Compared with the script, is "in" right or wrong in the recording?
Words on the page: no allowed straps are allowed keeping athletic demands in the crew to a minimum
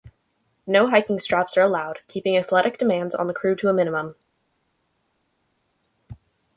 wrong